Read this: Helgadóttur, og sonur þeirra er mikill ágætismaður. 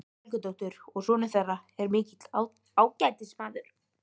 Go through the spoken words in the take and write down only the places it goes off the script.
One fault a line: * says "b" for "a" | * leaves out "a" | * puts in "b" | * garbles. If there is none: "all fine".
all fine